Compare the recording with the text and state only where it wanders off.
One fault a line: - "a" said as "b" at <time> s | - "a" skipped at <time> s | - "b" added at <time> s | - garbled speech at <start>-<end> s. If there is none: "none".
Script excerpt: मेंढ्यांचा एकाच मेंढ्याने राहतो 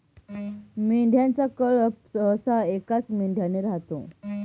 - "कळप सहसा" added at 1.6 s